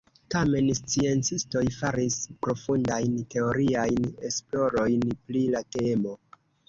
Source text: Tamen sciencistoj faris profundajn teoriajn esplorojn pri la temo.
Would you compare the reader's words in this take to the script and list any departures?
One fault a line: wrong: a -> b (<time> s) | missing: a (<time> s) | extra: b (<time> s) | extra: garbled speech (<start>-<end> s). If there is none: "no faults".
no faults